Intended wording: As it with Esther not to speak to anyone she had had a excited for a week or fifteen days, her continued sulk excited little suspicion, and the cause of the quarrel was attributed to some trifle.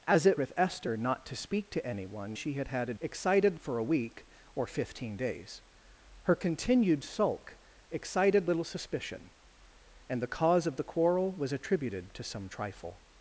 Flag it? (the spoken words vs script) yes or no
no